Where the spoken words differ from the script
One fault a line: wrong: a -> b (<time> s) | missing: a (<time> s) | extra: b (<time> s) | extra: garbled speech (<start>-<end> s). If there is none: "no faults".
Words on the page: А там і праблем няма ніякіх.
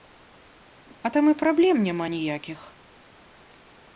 no faults